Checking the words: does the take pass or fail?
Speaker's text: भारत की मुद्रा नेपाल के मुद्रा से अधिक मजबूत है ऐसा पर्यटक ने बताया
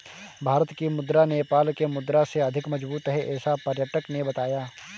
pass